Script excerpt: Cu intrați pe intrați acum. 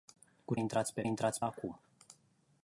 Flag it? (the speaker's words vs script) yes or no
no